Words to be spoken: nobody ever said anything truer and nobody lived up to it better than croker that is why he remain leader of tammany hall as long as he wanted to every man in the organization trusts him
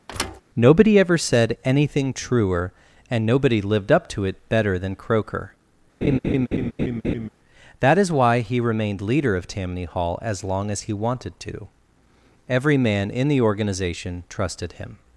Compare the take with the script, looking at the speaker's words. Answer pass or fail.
fail